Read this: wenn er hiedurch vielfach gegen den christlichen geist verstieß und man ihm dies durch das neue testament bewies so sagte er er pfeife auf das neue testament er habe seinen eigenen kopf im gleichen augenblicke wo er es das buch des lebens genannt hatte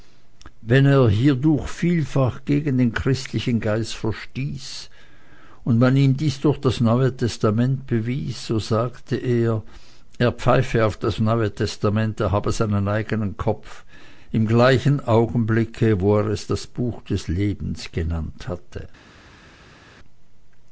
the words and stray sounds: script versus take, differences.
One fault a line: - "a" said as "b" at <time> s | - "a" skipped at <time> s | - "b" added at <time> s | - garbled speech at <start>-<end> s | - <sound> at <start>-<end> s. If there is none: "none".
none